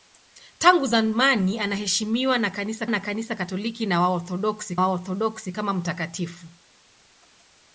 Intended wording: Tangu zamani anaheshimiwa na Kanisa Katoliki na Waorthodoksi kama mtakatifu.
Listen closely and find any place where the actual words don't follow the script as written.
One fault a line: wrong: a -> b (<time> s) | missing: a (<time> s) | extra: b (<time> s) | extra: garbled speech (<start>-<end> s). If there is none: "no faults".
extra: na Kanisa (2.9 s)
extra: Waorthodoksi (4.8 s)